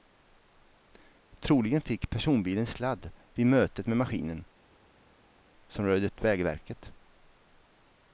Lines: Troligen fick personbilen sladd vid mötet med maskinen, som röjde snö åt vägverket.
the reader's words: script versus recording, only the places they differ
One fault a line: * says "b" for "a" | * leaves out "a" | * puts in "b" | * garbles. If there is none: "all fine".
* leaves out "snö"